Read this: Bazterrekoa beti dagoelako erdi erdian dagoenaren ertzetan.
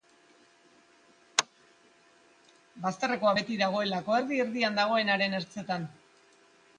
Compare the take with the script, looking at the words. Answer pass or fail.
pass